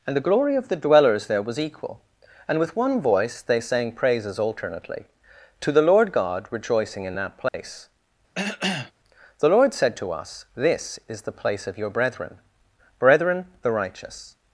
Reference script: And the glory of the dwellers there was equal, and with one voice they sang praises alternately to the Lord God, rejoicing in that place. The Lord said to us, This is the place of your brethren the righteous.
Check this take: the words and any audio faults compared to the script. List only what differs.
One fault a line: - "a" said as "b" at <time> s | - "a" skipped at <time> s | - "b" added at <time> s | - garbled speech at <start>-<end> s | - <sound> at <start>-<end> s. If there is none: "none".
- dropout at 7.5-7.5 s
- cough at 8.3-8.9 s
- "brethren" added at 13.0 s